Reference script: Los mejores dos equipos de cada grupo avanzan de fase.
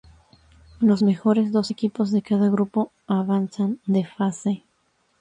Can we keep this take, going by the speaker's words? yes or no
yes